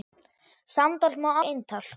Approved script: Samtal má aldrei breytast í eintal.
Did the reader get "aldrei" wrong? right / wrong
wrong